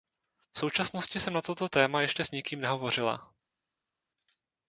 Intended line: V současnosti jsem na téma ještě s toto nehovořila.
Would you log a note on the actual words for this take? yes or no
yes